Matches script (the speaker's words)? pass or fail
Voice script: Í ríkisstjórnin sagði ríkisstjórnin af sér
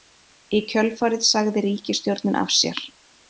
fail